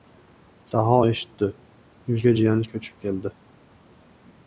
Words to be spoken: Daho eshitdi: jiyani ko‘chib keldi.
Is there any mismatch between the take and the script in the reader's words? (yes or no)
yes